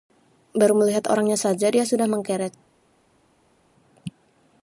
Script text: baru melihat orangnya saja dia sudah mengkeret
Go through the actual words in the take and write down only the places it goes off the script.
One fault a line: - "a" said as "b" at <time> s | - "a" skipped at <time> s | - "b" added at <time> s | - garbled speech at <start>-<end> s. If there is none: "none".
none